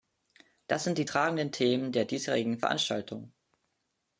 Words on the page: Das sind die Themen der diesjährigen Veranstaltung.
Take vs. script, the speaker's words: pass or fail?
fail